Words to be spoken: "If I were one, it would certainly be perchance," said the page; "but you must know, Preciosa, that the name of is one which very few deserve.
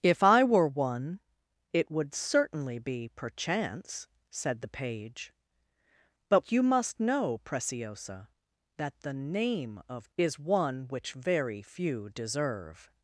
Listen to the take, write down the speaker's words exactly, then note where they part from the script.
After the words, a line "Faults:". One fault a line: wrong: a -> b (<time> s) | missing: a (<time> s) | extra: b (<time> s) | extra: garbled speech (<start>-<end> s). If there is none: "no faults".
"If I were one, it would certainly be perchance," said the page; "but you must know, Preciosa, that the name of is one which very few deserve.
Faults:
no faults